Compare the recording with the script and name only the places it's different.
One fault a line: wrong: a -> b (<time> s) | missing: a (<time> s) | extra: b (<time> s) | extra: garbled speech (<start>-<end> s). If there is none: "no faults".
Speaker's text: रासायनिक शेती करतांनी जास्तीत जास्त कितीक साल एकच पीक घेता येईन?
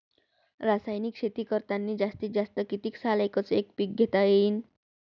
extra: एक (3.5 s)